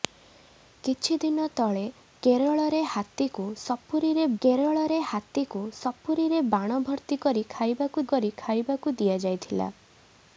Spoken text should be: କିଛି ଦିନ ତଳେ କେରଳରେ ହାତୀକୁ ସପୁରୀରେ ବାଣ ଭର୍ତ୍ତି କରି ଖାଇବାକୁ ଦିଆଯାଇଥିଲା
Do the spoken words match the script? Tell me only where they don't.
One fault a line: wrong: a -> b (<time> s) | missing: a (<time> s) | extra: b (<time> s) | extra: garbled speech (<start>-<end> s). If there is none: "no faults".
extra: କେରଳରେ ହାତୀକୁ ସପୁରୀରେ (4.4 s)
extra: କରି ଖାଇବାକୁ (8.1 s)